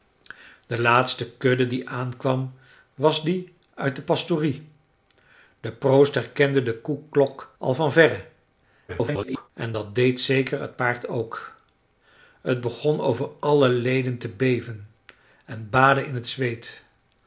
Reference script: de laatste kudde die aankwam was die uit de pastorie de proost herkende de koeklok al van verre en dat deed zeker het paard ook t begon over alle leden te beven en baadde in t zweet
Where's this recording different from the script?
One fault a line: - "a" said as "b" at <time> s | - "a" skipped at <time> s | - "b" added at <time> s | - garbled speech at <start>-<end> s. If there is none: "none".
- garbled speech at 8.9-9.5 s